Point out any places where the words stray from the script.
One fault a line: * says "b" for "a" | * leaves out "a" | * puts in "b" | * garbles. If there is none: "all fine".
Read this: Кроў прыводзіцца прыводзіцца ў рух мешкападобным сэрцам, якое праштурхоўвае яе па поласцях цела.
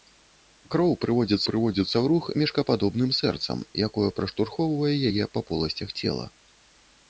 all fine